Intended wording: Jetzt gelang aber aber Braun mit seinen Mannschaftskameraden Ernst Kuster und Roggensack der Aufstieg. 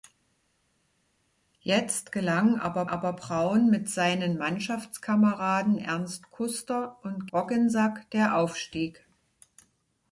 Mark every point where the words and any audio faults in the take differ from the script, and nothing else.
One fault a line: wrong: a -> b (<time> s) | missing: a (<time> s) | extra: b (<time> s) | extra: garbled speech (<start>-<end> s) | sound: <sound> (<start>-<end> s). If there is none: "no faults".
no faults